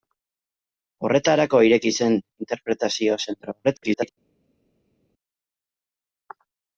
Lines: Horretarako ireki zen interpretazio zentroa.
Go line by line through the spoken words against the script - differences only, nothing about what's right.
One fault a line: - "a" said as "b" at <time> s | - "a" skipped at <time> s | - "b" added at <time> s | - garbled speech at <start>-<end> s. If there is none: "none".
- garbled speech at 3.6-4.1 s